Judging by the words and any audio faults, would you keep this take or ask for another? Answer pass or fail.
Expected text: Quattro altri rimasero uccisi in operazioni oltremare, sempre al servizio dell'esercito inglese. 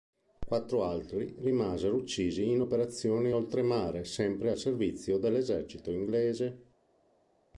pass